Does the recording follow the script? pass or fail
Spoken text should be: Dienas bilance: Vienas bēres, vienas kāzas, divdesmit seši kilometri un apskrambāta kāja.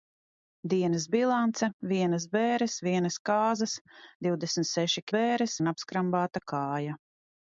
fail